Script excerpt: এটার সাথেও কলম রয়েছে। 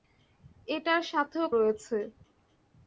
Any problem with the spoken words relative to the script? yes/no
yes